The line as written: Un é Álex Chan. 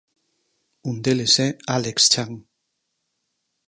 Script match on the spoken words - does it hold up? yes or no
no